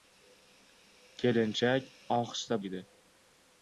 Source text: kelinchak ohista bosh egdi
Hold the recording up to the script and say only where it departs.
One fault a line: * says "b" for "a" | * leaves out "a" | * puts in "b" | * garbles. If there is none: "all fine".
* leaves out "bosh"